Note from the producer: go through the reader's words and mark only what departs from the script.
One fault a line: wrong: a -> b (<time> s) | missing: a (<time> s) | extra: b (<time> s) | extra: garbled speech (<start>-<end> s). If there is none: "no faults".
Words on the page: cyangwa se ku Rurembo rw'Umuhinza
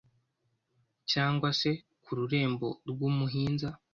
no faults